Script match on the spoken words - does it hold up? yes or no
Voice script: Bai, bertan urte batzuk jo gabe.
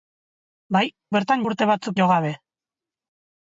yes